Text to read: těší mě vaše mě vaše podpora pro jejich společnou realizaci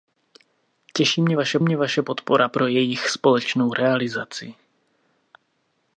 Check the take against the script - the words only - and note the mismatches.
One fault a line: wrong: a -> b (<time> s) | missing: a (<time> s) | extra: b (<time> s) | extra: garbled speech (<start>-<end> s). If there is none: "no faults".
no faults